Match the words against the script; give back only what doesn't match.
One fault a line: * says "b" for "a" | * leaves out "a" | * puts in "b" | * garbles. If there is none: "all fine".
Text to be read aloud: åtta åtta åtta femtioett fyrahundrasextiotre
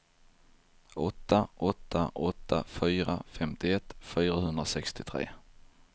* puts in "fyra"